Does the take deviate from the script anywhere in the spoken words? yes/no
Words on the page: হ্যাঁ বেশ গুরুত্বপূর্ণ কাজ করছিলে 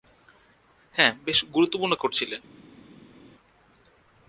yes